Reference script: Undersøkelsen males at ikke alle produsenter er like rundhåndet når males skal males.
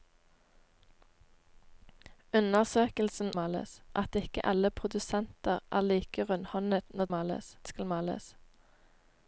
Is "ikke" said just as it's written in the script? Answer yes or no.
yes